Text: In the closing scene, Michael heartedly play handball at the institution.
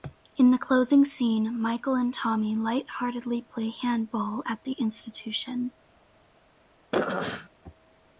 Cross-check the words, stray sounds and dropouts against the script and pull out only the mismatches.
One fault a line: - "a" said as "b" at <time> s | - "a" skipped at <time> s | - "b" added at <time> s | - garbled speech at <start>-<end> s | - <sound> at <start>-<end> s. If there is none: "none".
- "and Tommy light" added at 1.9 s
- throat clearing at 6.9-7.5 s